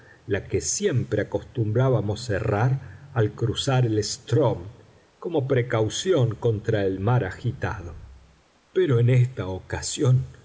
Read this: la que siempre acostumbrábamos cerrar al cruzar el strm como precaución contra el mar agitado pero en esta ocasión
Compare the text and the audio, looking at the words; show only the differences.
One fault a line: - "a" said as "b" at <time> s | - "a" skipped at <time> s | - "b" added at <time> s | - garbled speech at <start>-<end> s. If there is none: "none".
none